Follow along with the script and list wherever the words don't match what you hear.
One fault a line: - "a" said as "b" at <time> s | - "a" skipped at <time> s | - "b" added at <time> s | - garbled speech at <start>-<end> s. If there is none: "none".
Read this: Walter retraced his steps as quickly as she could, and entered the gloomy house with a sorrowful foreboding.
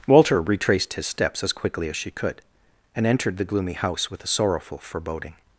none